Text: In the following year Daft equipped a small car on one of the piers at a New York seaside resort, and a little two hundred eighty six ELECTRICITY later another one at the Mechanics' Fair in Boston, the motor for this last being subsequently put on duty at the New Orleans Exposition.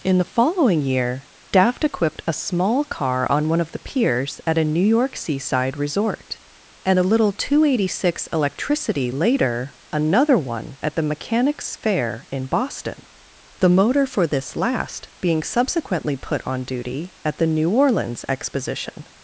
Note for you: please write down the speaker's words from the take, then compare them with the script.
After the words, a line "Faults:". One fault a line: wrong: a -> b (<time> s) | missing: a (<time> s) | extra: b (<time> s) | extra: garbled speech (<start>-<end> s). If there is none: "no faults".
In the following year Daft equipped a small car on one of the piers at a New York seaside resort, and a little two hundred eighty six ELECTRICITY later another one at the Mechanics' Fair in Boston, the motor for this last being subsequently put on duty at the New Orleans Exposition.
Faults:
no faults